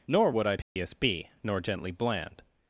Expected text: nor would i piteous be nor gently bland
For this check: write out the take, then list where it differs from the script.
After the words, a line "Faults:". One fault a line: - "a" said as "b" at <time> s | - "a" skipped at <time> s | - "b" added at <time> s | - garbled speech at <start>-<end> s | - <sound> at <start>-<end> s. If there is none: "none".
nor would i piteous be nor gently bland
Faults:
- dropout at 0.6-0.8 s